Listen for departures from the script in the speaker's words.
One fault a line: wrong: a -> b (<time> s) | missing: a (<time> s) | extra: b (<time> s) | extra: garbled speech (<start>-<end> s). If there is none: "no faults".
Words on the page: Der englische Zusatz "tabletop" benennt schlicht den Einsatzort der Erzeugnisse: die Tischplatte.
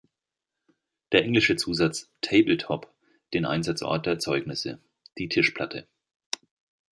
missing: benennt schlicht (2.9 s)